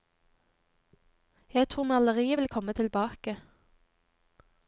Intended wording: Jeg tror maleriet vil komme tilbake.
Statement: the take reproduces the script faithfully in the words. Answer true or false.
true